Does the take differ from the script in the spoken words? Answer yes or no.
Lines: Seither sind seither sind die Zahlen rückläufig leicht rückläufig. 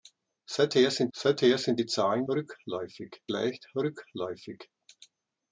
no